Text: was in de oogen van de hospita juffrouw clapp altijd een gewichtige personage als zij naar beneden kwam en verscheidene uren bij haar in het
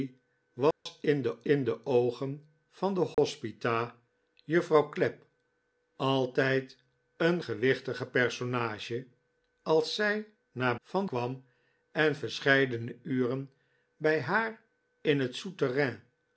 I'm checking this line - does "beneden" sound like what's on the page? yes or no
no